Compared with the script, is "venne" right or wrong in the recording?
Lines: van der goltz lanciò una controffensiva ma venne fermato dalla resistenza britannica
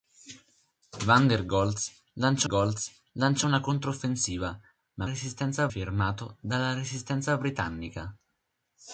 wrong